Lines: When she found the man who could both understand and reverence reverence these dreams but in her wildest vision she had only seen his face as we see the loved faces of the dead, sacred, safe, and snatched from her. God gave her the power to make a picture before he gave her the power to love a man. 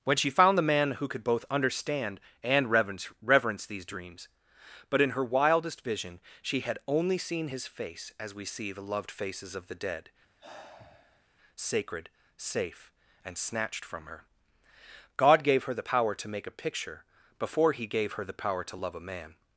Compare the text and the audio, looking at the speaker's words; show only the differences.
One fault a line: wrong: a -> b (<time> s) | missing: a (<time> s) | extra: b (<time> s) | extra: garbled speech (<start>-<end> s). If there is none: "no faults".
no faults